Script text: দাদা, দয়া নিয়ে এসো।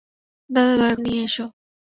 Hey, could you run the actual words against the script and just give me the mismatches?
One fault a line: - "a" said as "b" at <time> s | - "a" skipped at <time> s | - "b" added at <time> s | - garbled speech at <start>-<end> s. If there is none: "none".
none